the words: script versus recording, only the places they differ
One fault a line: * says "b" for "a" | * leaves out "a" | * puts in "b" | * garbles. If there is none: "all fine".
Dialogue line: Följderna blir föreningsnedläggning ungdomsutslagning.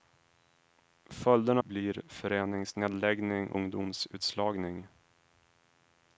all fine